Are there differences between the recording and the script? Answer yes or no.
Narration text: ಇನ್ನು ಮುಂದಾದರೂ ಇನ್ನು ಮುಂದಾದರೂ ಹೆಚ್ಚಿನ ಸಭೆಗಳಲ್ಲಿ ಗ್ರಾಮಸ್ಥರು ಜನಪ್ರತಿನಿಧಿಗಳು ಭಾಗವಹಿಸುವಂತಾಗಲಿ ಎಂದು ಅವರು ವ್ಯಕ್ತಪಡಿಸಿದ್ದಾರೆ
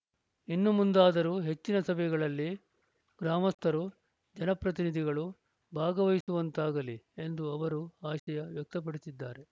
yes